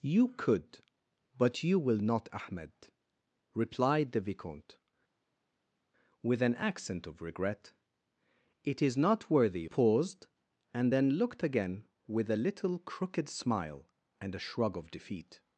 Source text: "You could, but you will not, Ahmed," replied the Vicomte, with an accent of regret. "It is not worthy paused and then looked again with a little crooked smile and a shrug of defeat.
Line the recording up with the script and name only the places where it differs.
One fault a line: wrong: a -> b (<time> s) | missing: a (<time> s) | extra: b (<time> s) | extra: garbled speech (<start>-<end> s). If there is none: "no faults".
no faults